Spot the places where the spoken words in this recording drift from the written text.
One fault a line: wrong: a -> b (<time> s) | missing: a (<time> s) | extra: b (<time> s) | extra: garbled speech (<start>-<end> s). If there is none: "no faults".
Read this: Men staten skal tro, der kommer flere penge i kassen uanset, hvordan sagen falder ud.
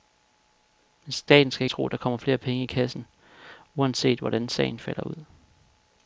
no faults